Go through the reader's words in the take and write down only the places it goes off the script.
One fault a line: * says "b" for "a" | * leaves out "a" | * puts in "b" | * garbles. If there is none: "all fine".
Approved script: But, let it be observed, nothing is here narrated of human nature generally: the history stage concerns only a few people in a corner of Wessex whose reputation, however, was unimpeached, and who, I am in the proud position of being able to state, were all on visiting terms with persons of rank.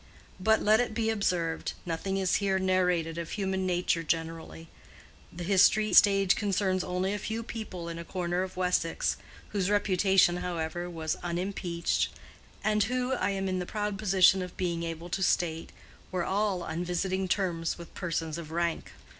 all fine